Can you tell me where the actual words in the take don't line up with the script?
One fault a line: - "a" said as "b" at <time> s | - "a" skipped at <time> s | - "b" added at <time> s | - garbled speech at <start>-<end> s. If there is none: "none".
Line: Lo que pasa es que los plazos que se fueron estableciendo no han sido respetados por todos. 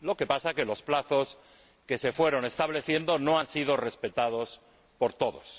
none